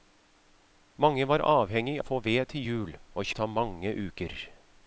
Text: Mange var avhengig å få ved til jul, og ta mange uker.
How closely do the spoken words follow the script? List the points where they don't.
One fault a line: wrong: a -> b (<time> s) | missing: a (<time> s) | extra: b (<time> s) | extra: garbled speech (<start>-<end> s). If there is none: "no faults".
no faults